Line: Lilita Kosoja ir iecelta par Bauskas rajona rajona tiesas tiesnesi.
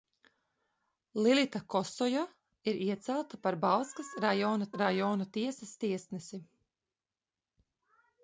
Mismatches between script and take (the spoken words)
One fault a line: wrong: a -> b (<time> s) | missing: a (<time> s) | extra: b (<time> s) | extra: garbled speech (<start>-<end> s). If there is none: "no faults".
no faults